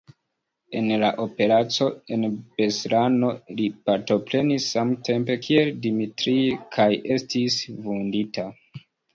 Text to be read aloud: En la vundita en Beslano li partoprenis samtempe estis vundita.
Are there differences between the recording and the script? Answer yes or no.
yes